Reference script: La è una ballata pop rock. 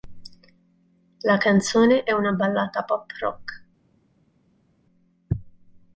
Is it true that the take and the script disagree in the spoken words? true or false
true